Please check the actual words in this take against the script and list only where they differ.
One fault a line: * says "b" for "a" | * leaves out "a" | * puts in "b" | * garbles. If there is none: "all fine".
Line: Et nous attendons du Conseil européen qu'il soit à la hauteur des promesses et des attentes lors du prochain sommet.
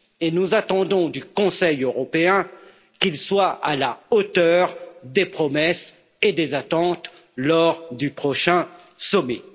all fine